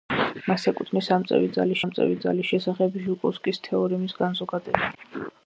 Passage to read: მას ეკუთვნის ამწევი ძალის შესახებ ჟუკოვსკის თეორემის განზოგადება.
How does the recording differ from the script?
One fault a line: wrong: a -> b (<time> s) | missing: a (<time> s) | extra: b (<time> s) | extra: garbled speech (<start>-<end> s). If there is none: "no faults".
extra: ამწევი ძალის (1.8 s)